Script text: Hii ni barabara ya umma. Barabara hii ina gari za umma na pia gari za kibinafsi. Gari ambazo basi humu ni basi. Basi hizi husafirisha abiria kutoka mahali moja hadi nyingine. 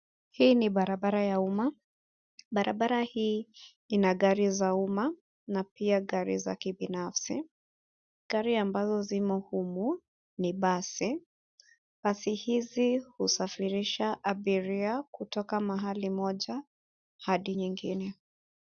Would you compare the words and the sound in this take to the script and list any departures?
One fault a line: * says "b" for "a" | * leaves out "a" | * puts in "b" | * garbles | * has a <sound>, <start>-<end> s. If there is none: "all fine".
* says "zimo" for "basi"